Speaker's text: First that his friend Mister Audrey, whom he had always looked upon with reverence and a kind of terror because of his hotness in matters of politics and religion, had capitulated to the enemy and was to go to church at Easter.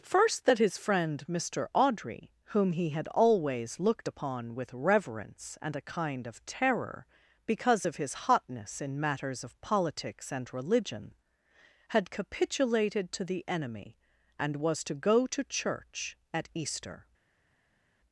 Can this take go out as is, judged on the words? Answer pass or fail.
pass